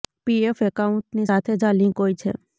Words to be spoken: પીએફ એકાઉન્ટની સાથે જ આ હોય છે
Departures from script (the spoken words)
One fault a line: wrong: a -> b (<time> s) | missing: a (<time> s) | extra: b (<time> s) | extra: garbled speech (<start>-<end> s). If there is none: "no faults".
extra: લિંક (1.8 s)